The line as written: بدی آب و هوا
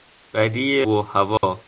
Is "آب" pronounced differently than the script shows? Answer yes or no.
yes